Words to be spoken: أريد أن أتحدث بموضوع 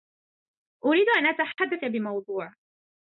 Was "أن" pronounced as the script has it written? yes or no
yes